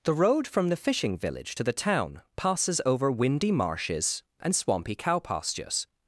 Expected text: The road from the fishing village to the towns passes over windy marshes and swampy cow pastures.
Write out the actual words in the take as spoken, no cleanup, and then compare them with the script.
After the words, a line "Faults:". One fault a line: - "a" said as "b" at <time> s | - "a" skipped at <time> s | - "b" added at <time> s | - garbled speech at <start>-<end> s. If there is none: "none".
The road from the fishing village to the town passes over windy marshes and swampy cow pastures.
Faults:
- "towns" said as "town" at 1.7 s